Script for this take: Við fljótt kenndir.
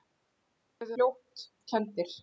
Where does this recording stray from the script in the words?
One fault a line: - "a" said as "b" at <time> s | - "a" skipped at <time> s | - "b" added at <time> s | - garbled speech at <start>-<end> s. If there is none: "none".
none